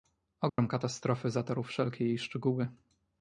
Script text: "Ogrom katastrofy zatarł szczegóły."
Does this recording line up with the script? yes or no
no